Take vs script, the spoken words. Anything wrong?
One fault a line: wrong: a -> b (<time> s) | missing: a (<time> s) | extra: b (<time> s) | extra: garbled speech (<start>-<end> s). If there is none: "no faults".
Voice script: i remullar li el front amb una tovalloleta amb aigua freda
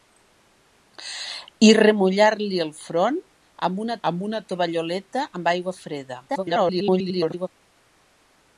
extra: amb una (4.1 s)
extra: garbled speech (6.3-7.5 s)